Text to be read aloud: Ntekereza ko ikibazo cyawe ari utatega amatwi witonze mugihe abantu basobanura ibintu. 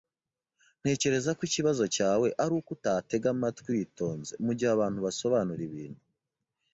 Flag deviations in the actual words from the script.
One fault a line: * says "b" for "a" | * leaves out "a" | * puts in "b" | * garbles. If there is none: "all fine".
* puts in "uko"